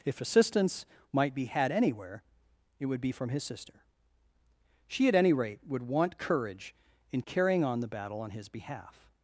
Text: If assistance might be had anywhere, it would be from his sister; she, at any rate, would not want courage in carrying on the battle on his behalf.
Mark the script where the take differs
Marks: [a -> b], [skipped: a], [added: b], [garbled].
If assistance might be had anywhere, it would be from his sister; she, at any rate, would [skipped: not] want courage in carrying on the battle on his behalf.